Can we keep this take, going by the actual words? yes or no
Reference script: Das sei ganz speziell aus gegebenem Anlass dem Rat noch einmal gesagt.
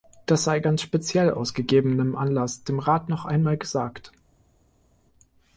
yes